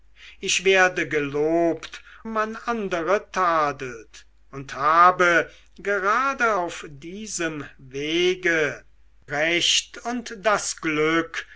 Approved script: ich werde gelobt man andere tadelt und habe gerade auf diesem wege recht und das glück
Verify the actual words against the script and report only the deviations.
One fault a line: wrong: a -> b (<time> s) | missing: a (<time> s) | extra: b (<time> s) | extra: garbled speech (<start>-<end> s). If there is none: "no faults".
no faults